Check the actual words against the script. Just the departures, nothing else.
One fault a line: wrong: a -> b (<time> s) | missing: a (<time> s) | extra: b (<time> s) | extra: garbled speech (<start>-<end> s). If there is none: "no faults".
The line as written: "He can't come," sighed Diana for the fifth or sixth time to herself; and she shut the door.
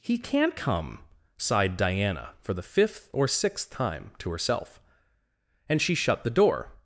no faults